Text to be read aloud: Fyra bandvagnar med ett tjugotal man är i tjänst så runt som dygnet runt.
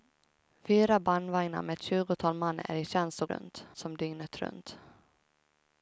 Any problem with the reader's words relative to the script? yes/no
no